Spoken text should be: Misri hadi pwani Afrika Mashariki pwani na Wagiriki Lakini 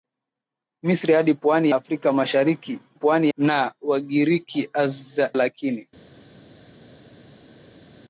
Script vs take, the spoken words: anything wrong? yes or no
no